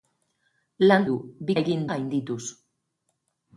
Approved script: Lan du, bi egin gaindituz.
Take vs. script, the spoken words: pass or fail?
pass